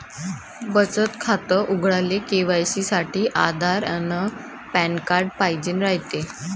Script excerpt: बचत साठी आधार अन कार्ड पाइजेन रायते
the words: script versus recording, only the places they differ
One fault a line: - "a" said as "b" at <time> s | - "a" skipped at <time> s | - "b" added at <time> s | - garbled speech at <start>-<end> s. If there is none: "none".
- "खातं उघडाले के.वाय.सी" added at 1.2 s
- "पॅन" added at 4.7 s